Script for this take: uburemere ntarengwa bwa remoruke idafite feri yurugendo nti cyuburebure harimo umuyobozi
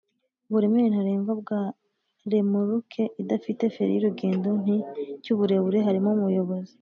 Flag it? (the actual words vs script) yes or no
no